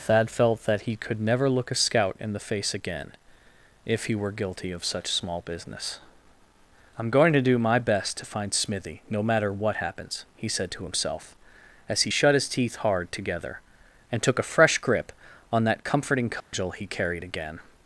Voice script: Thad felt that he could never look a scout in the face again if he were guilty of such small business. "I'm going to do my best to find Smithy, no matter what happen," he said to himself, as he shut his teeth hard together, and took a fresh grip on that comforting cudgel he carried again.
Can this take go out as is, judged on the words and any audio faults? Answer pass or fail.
fail